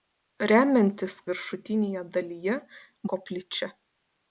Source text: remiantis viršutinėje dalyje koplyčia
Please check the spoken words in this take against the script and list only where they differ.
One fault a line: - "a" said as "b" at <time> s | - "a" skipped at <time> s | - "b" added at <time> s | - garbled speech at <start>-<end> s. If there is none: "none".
none